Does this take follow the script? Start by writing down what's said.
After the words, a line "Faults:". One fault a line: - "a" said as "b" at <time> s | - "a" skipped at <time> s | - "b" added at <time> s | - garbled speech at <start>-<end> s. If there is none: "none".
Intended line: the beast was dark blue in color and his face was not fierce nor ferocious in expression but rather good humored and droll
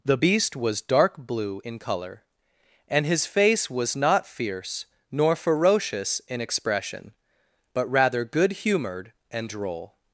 the beast was dark blue in color and his face was not fierce nor ferocious in expression but rather good humored and droll
Faults:
none